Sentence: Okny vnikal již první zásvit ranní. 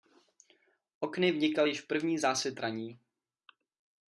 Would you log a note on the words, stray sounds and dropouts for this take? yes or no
no